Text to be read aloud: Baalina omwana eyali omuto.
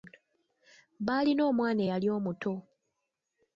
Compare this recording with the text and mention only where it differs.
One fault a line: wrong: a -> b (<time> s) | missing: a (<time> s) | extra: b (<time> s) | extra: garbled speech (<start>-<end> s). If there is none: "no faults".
no faults